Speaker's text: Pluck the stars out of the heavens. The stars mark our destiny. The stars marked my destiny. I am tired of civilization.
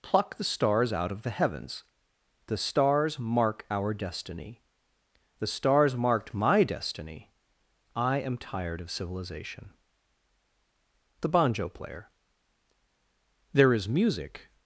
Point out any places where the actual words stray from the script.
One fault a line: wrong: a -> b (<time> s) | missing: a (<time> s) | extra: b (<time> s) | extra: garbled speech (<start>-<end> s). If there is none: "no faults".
extra: THE BANJO PLAYER There is music (11.2 s)